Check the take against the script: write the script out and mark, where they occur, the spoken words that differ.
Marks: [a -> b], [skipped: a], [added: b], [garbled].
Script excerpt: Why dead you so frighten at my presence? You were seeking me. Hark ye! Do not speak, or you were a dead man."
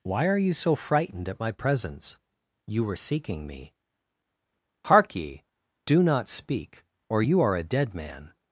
Why [dead -> are] you so [frighten -> frightened] at my presence? You were seeking me. Hark ye! Do not speak, or you [were -> are] a dead man."